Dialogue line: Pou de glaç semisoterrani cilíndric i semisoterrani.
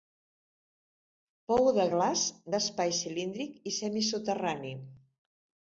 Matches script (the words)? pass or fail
fail